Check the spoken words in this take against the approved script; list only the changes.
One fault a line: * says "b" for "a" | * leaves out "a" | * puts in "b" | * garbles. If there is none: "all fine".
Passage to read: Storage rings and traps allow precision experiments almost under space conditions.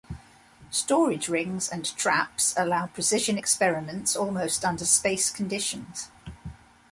all fine